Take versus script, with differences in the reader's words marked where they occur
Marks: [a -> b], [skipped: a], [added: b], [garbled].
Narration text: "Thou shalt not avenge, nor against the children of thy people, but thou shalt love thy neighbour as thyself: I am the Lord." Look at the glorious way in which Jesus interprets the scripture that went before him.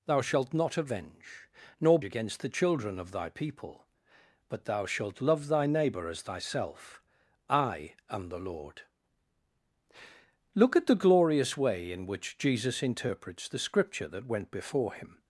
"Thou shalt not avenge, nor against the children of thy people, but thou shalt love thy neighbour as thyself: I am the Lord." Look at the glorious way in which Jesus interprets the scripture that went before him.